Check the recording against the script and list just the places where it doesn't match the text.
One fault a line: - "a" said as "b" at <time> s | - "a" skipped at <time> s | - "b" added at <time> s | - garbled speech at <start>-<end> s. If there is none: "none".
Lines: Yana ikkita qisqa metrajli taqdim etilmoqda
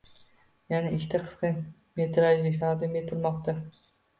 none